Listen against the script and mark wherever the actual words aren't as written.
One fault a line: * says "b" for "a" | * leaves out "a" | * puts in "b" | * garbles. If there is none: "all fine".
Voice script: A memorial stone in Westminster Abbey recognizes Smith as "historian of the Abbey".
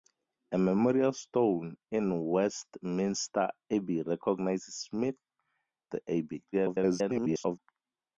* leaves out "as historian of"
* garbles